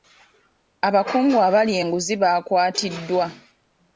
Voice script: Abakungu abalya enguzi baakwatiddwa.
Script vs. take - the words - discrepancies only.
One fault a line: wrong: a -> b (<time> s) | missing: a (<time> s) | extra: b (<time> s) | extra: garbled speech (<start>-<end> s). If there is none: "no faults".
no faults